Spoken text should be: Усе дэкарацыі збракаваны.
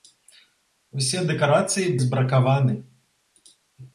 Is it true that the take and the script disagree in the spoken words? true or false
false